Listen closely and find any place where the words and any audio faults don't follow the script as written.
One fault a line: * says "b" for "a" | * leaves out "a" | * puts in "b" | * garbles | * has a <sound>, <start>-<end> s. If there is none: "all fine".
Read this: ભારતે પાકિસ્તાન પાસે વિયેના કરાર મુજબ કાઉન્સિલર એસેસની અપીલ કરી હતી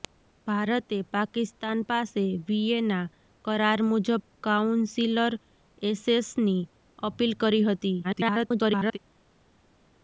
* garbles